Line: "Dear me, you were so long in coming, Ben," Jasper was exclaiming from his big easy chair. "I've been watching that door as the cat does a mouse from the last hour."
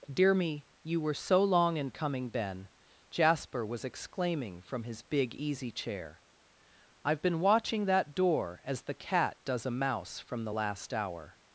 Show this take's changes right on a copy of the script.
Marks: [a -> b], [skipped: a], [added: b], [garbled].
"Dear me, you were so long in coming, Ben," Jasper was exclaiming from his big easy chair. "I've been watching that door as the cat does a mouse from the last hour."